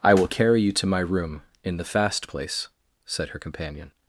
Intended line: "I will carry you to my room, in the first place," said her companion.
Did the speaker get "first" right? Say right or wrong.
wrong